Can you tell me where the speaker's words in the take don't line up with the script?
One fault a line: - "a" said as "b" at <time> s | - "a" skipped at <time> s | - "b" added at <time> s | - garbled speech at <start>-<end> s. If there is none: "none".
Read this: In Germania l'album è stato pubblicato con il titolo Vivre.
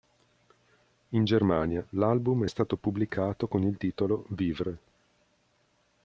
none